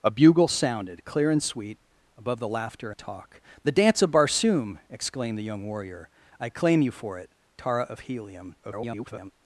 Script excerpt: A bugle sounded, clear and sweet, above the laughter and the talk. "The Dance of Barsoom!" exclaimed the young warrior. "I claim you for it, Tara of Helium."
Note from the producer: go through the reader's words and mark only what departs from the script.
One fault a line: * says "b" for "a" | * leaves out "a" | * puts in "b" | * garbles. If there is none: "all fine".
* leaves out "and"
* garbles